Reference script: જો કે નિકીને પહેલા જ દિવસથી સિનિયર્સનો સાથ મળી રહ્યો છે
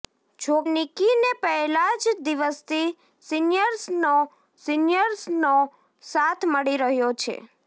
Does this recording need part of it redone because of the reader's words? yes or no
yes